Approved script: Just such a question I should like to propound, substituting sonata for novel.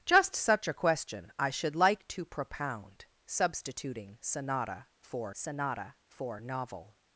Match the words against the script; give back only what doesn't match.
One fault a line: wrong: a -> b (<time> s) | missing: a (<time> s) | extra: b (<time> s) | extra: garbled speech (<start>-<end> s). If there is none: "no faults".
extra: sonata for (5.3 s)